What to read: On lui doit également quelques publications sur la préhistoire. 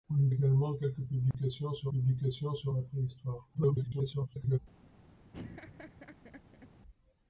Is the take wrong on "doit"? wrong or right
wrong